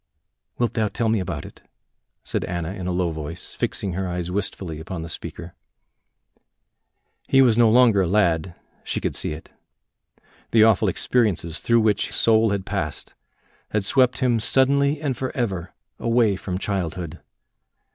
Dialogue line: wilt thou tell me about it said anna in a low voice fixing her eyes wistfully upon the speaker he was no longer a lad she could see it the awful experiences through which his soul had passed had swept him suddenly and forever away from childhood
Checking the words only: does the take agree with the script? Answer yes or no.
no